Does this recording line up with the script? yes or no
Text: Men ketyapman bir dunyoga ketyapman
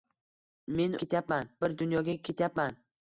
yes